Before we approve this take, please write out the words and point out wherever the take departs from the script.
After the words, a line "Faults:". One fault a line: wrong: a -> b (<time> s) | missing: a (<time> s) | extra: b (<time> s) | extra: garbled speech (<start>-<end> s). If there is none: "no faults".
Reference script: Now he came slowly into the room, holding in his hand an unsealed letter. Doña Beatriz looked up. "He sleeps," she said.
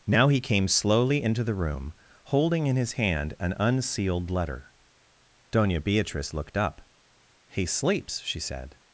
Now he came slowly into the room, holding in his hand an unsealed letter. Doña Beatriz looked up. "He sleeps," she said.
Faults:
no faults